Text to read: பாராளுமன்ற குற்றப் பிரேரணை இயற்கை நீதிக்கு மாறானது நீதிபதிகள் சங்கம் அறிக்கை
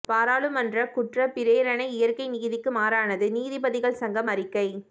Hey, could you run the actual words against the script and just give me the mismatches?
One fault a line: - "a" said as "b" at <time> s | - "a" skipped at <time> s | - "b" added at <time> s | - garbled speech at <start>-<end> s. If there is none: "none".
none